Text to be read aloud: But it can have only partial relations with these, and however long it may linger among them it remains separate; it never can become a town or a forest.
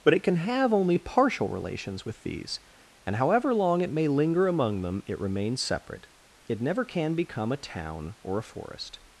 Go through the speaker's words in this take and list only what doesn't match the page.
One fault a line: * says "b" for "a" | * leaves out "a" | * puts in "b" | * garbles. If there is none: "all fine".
all fine